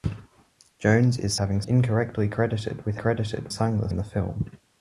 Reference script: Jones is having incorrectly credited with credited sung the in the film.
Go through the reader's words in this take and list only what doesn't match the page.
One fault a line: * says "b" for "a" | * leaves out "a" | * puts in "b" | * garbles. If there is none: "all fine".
all fine